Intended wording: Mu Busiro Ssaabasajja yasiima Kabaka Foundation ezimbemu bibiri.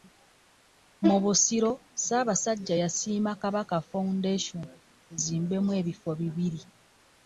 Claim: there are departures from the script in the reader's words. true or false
true